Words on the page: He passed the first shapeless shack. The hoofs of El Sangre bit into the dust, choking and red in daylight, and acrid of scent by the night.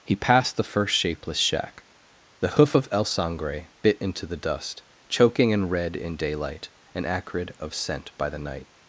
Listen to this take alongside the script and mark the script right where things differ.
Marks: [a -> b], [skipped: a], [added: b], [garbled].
He passed the first shapeless shack. The [hoofs -> hoof] of El Sangre bit into the dust, choking and red in daylight, and acrid of scent by the night.